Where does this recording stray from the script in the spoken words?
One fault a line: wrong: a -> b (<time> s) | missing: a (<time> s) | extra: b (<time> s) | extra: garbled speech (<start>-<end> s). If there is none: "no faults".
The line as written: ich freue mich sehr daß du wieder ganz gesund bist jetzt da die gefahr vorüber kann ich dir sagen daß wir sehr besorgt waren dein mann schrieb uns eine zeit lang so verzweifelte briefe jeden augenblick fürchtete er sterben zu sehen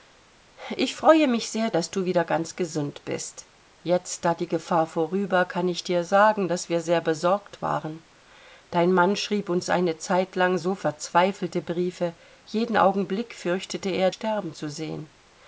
no faults